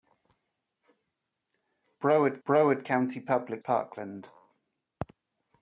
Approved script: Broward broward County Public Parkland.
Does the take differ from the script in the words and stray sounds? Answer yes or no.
no